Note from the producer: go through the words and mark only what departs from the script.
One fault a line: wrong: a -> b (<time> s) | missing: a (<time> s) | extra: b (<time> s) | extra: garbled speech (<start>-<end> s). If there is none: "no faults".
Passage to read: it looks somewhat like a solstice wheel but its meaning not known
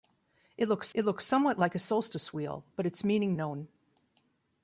extra: it looks (0.9 s)
missing: not (3.3 s)